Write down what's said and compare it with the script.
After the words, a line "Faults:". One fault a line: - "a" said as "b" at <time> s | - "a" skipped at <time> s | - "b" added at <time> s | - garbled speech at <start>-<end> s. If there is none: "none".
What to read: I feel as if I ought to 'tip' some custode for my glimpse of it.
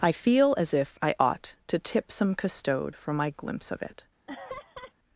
I feel as if I ought to 'tip' some custode for my glimpse of it.
Faults:
none